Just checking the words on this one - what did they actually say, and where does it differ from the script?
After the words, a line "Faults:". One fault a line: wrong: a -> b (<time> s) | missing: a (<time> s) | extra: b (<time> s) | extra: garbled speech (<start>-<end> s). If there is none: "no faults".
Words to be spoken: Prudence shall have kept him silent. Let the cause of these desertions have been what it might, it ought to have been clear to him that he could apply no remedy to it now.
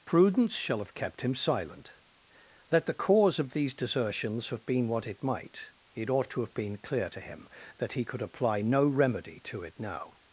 Prudence shall have kept him silent. Let the cause of these desertions have been what it might, it ought to have been clear to him that he could apply no remedy to it now.
Faults:
no faults